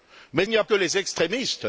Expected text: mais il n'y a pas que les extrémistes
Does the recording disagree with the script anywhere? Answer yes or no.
yes